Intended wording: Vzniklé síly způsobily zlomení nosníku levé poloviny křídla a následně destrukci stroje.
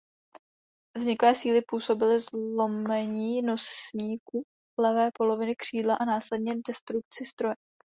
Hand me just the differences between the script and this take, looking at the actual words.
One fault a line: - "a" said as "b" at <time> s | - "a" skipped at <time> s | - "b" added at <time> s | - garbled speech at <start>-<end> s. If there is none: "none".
none